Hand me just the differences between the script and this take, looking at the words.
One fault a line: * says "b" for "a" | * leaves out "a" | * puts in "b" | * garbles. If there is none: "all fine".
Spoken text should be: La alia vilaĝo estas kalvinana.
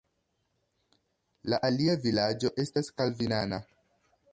all fine